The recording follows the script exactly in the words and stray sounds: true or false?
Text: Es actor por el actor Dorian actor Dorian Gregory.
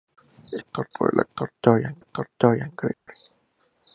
false